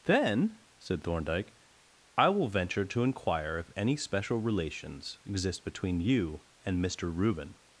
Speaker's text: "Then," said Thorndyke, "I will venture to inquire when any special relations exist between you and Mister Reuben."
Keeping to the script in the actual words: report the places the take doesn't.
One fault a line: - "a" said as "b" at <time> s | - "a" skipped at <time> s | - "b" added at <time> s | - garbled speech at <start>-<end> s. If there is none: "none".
- "when" said as "if" at 3.6 s